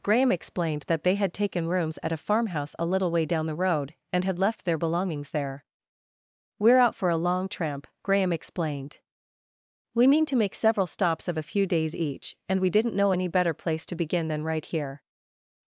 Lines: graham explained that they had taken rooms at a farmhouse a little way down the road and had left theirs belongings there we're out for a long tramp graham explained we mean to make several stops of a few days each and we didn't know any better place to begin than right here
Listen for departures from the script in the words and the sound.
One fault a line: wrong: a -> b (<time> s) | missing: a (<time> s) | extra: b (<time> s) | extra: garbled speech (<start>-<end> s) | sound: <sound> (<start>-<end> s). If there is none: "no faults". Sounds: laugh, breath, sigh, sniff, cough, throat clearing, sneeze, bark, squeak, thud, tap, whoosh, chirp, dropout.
wrong: theirs -> their (4.7 s)